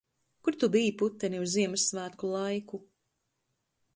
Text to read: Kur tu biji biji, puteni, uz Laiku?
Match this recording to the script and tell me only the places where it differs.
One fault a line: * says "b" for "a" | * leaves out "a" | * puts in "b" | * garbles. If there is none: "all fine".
* leaves out "biji"
* puts in "Ziemassvētku"